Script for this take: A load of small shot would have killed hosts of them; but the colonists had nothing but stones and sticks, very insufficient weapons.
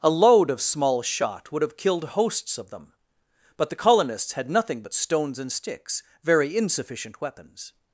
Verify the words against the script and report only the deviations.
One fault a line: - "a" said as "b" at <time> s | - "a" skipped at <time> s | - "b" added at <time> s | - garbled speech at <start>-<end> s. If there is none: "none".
none